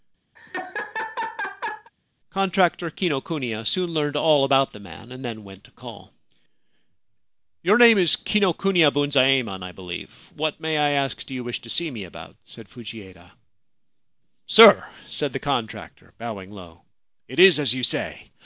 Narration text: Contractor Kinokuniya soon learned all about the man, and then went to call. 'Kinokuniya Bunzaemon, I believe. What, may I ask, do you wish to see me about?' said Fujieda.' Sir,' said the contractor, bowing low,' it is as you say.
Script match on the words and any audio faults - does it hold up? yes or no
no